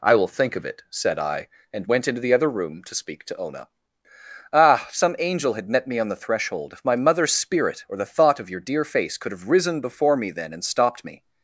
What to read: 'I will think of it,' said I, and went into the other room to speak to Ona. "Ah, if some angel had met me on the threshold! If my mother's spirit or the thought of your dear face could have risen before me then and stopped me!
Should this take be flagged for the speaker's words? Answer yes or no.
no